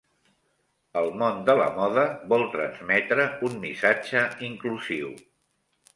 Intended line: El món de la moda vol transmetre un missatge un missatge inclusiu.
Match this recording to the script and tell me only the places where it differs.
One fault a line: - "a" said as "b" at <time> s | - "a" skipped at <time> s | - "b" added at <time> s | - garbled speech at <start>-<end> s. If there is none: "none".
- "un missatge" skipped at 4.2 s